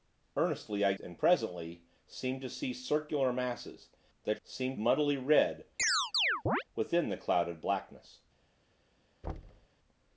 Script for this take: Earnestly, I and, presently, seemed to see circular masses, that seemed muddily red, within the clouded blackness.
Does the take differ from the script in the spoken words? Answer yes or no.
no